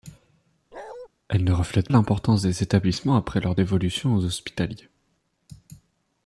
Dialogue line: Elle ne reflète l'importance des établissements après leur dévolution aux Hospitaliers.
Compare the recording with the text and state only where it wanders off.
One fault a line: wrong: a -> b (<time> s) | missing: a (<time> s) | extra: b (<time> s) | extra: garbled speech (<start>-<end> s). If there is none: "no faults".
no faults